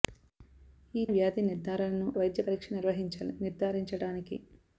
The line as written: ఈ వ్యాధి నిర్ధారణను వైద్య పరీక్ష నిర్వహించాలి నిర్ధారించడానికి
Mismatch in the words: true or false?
false